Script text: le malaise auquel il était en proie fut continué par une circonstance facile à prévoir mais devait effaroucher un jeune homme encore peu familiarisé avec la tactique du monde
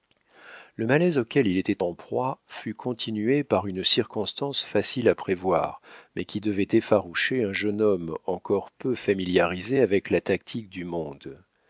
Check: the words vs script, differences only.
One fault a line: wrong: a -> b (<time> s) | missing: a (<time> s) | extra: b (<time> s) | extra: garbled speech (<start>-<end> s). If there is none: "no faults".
extra: qui (6.3 s)